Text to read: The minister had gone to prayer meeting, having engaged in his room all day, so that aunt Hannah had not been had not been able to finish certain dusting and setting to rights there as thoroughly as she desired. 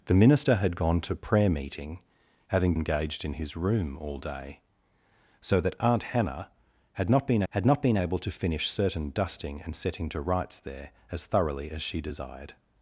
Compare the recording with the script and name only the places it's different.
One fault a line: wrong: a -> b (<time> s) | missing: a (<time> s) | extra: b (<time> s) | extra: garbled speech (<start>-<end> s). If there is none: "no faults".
no faults